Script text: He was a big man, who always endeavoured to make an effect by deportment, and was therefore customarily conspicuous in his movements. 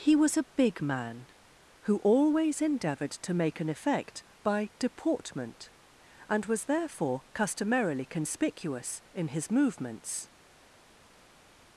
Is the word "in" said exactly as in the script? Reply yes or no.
yes